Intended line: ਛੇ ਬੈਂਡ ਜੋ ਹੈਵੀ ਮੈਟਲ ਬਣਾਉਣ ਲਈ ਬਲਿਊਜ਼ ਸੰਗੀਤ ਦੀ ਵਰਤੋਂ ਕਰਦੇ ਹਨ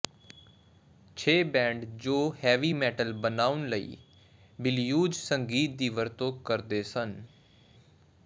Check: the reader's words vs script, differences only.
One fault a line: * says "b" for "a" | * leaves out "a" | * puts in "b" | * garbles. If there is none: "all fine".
* says "ਸਨ" for "ਹਨ"